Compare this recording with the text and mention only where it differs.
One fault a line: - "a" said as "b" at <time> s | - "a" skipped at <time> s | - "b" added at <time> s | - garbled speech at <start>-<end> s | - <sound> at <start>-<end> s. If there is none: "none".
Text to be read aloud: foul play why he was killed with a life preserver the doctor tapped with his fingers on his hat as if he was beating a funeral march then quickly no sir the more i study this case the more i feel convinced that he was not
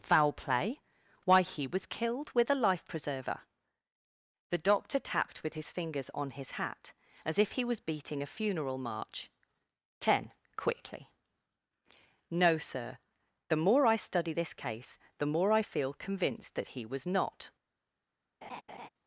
- "then" said as "ten" at 10.0 s
- laugh at 18.4-18.9 s